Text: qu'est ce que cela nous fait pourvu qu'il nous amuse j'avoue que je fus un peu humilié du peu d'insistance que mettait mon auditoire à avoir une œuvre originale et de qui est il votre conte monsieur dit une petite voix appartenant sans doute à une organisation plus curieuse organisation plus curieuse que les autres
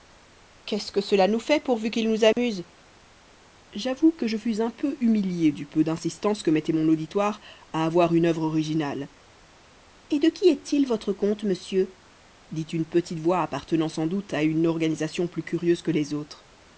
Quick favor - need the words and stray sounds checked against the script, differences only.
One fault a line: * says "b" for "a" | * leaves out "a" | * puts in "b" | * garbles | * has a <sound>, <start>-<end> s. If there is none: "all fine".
* has a dropout, 2.3-2.4 s
* leaves out "organisation plus curieuse"